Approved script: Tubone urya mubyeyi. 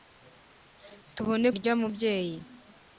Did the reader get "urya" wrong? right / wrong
right